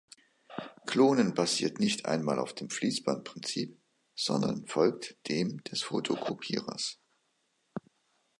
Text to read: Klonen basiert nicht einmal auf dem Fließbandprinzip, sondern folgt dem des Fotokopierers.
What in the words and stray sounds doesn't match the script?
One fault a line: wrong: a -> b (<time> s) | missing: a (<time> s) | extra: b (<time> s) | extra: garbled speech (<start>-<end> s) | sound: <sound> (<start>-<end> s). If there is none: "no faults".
no faults